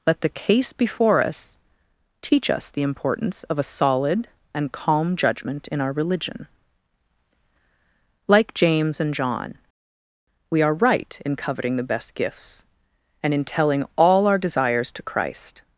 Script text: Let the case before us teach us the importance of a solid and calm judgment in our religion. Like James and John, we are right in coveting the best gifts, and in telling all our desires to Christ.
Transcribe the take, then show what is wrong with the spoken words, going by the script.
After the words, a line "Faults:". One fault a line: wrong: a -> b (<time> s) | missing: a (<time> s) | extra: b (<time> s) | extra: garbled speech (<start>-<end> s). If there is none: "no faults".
Let the case before us teach us the importance of a solid and calm judgment in our religion. Like James and John, we are right in coveting the best gifts, and in telling all our desires to Christ.
Faults:
no faults